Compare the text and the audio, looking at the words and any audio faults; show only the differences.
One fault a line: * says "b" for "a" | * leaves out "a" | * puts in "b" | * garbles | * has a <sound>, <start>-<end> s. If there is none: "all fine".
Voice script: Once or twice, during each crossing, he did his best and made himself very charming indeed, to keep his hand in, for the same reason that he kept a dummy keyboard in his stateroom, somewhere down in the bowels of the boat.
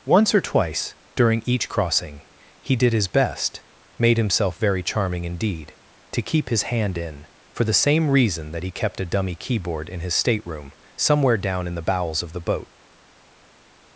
* leaves out "and"